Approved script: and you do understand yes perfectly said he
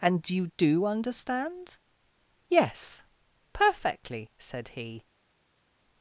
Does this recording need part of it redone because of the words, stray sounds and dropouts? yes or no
no